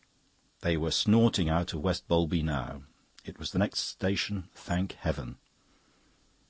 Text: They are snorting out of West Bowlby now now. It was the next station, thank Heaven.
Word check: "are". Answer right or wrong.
wrong